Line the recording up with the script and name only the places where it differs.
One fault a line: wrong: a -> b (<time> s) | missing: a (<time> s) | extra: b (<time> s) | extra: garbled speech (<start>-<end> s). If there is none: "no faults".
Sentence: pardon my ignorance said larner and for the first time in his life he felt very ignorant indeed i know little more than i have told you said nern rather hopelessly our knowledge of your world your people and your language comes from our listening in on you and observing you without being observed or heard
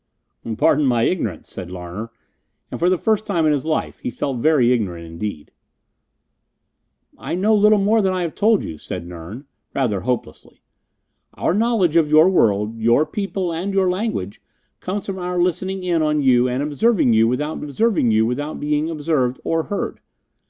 extra: observing you without (17.6 s)